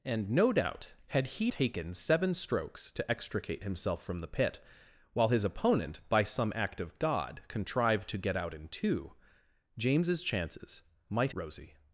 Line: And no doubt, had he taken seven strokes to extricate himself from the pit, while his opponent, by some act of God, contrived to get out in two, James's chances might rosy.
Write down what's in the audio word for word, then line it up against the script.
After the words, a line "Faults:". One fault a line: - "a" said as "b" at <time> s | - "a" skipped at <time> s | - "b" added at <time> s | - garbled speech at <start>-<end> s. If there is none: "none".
And no doubt, had he taken seven strokes to extricate himself from the pit, while his opponent, by some act of God, contrived to get out in two, James's chances might rosy.
Faults:
none